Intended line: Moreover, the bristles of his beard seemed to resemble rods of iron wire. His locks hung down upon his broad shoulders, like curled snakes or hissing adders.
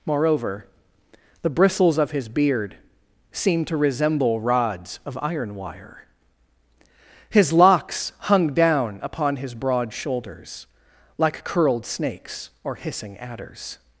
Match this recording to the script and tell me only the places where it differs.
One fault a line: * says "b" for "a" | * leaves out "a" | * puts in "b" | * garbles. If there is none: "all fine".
all fine